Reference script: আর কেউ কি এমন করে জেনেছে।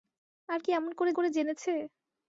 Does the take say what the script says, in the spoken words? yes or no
no